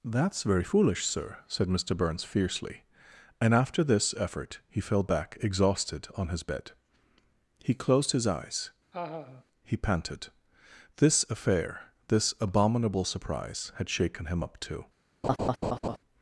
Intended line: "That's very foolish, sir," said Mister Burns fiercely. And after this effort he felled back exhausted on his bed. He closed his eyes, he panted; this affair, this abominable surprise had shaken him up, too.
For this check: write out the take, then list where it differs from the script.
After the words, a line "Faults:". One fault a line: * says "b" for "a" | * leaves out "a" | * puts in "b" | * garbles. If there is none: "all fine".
"That's very foolish, sir," said Mister Burns fiercely. And after this effort he fell back exhausted on his bed. He closed his eyes, he panted; this affair, this abominable surprise had shaken him up, too.
Faults:
* says "fell" for "felled"